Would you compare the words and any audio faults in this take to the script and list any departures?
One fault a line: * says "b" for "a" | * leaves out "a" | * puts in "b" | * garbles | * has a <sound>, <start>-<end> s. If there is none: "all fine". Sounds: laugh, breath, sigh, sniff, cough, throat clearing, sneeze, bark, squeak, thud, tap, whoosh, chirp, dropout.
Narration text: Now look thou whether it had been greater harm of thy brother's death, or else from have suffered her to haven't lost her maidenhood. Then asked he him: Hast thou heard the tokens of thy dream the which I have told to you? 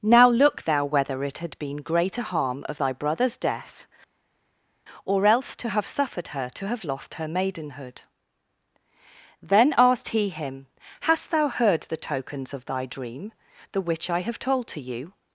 * says "to" for "from"
* says "have" for "haven't"